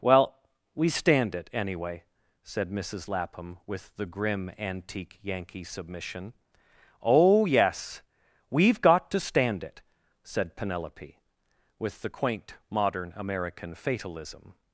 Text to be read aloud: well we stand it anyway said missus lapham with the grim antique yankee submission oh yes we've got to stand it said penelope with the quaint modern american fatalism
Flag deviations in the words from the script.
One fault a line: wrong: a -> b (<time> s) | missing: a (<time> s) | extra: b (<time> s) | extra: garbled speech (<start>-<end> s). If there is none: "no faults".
no faults